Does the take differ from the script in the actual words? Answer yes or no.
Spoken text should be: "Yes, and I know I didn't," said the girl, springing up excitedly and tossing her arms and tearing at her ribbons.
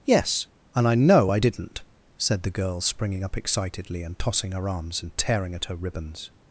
no